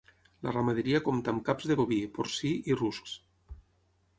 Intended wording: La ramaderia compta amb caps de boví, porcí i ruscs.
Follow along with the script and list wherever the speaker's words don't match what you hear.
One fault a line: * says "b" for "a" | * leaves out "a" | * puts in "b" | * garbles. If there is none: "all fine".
all fine